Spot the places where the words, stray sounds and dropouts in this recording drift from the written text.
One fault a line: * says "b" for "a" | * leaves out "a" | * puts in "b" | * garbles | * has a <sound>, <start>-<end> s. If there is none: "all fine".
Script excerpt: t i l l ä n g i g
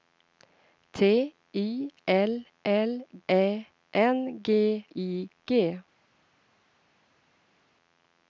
all fine